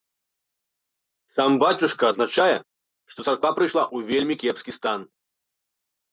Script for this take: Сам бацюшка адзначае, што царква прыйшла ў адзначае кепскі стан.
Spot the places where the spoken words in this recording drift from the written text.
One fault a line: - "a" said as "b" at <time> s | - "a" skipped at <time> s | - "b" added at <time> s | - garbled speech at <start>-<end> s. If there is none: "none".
- "адзначае" said as "вельмі" at 4.2 s